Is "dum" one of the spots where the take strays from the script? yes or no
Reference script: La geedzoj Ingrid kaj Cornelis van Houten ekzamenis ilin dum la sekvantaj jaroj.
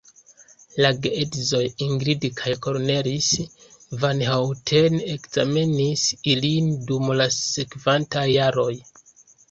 no